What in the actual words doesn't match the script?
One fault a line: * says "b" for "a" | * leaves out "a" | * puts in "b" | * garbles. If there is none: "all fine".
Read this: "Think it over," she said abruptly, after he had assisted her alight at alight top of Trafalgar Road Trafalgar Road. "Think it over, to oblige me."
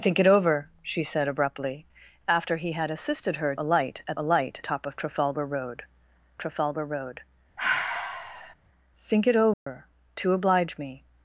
all fine